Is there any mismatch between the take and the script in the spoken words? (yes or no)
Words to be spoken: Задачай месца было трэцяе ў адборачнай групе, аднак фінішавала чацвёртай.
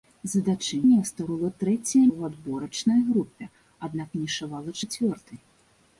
no